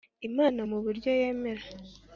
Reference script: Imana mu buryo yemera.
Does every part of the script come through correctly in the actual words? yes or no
yes